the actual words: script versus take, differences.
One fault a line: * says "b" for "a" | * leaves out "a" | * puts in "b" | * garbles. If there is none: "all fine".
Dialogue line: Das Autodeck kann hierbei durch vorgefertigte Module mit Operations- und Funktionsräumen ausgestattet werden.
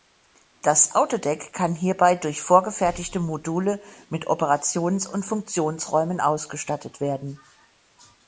all fine